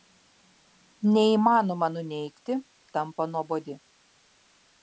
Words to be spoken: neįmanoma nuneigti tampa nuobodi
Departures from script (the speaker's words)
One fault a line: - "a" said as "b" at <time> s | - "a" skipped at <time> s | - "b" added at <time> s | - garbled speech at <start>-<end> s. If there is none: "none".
none